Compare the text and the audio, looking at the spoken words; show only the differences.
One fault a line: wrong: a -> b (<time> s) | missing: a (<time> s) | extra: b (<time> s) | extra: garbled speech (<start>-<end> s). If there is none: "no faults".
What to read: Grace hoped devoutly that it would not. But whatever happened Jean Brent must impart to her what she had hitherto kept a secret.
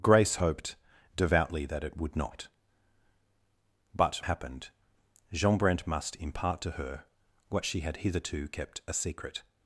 missing: whatever (4.2 s)